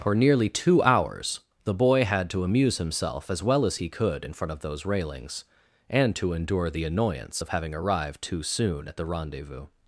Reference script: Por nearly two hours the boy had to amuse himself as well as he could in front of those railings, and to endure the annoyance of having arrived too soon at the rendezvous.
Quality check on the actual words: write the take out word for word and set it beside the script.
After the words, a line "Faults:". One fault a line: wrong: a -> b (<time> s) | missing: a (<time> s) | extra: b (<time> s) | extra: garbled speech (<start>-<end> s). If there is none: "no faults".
For nearly two hours the boy had to amuse himself as well as he could in front of those railings, and to endure the annoyance of having arrived too soon at the rendezvous.
Faults:
wrong: Por -> For (0.0 s)